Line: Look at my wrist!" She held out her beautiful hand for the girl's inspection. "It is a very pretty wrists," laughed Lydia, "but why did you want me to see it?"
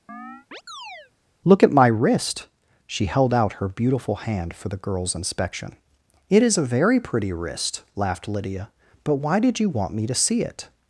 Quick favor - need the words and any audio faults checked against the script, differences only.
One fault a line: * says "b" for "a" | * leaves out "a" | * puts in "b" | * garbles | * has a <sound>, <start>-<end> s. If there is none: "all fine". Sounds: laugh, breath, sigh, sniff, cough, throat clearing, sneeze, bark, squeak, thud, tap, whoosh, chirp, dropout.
* has a chirp, 0.1-1.1 s
* says "wrist" for "wrists"